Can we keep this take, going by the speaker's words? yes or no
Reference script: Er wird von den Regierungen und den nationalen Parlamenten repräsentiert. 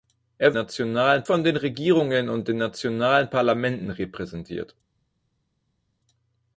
no